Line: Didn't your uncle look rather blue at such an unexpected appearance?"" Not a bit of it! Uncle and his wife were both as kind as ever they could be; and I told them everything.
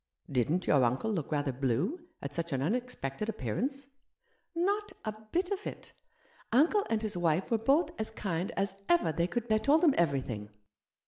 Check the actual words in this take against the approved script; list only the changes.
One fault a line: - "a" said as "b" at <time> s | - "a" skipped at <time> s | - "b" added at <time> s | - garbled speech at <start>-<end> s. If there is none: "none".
- "be and" skipped at 9.5 s